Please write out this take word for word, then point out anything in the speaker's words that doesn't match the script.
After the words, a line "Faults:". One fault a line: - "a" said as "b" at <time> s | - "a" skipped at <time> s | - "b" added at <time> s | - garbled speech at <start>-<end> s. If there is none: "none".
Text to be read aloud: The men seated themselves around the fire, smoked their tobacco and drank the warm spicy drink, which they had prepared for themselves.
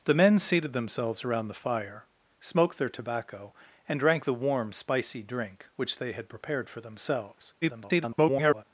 The men seated themselves around the fire, smoked their tobacco and drank the warm spicy drink, which they had prepared for themselves. [garbled]
Faults:
- garbled speech at 7.6-8.6 s